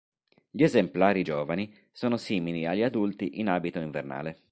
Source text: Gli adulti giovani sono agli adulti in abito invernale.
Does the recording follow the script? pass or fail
fail